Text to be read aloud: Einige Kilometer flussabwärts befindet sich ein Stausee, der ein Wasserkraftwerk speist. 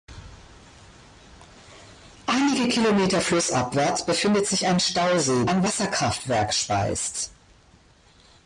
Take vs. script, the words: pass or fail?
fail